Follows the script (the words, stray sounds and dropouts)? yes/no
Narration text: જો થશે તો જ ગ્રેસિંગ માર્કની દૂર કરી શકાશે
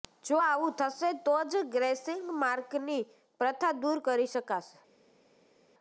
no